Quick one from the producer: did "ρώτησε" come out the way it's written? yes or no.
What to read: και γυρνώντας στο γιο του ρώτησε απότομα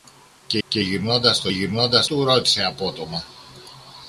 yes